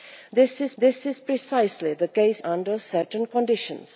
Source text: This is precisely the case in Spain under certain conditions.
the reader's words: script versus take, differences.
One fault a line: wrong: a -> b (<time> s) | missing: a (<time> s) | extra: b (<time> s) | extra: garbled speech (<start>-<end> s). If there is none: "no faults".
extra: this is (0.8 s)
missing: in Spain (2.4 s)